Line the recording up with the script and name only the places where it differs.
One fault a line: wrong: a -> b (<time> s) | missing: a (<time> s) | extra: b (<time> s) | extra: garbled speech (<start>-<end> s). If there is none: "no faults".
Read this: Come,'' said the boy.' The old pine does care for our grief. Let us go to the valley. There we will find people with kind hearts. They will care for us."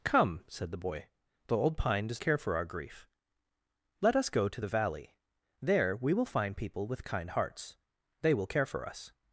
no faults